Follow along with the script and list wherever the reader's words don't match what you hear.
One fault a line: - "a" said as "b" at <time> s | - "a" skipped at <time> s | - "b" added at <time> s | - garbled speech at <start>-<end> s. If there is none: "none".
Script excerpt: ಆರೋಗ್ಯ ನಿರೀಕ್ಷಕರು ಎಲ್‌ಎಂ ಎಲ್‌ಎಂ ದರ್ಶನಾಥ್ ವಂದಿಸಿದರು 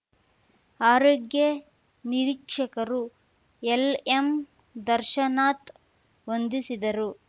- "ಎಲ್‌ಎಂ" skipped at 4.3 s